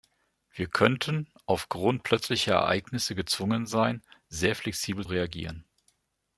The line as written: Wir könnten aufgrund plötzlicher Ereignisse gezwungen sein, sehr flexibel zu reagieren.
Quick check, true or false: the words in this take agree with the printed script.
false